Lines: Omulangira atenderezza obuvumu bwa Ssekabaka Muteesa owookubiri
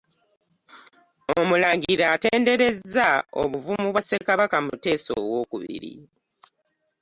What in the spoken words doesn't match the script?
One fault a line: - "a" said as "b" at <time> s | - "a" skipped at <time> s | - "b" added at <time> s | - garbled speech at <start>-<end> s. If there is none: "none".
none